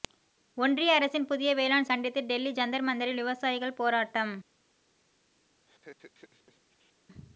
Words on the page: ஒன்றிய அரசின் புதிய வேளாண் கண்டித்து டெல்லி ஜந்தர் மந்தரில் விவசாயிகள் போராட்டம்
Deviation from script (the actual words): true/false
false